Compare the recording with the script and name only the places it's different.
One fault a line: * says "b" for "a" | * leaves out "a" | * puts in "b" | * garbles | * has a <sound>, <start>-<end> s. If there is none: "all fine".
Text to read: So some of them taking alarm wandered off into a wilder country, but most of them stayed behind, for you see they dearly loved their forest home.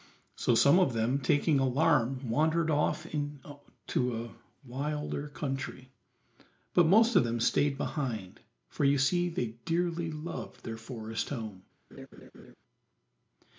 * has a laugh, 11.9-12.5 s